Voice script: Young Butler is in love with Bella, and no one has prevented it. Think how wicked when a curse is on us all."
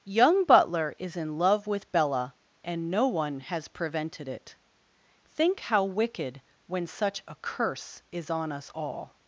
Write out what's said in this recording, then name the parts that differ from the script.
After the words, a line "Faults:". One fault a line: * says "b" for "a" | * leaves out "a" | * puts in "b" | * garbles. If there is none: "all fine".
Young Butler is in love with Bella, and no one has prevented it. Think how wicked when such a curse is on us all."
Faults:
* puts in "such"